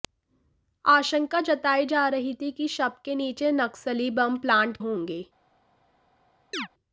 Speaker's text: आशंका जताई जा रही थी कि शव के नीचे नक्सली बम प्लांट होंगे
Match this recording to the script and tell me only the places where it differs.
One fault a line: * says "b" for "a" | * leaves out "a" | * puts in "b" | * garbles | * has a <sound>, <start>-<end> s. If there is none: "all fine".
* has a chirp, 6.5-6.7 s